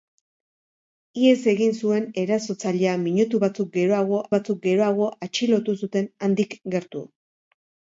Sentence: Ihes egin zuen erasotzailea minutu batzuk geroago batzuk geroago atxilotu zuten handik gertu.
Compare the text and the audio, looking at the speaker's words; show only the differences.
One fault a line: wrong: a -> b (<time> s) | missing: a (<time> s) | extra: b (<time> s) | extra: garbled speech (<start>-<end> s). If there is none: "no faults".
no faults